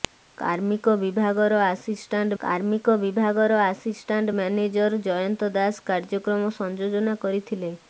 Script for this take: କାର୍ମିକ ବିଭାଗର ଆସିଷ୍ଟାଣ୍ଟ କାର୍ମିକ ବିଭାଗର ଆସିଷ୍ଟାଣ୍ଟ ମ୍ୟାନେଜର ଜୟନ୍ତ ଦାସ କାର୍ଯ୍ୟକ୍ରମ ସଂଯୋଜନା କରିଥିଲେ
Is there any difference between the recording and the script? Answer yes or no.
no